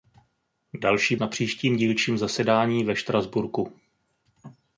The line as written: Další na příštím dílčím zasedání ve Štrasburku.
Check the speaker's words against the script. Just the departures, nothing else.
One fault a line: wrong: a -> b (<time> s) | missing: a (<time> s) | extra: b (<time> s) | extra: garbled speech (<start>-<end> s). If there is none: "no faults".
no faults